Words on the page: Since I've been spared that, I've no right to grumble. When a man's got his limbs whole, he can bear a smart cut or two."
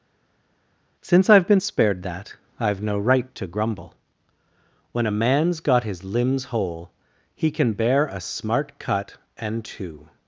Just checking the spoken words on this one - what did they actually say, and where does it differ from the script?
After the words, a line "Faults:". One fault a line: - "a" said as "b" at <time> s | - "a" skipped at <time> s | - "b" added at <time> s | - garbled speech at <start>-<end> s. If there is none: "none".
Since I've been spared that, I've no right to grumble. When a man's got his limbs whole, he can bear a smart cut and two."
Faults:
- "or" said as "and" at 9.4 s